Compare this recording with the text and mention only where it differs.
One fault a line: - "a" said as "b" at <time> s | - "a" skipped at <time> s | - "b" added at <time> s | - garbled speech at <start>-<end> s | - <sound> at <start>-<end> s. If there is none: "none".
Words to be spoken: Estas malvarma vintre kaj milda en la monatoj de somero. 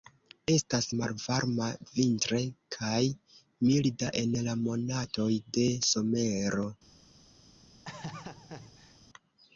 - laugh at 7.8-9.0 s